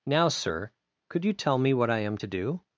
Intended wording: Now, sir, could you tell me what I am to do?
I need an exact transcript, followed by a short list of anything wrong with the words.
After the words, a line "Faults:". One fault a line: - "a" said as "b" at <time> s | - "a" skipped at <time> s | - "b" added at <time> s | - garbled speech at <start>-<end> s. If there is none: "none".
Now, sir, could you tell me what I am to do?
Faults:
none